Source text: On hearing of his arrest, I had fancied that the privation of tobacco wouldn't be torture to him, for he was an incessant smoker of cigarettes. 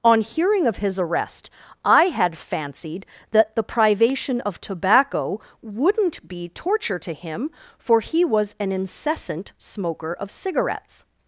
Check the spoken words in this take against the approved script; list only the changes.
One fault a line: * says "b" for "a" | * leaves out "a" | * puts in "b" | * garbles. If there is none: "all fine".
all fine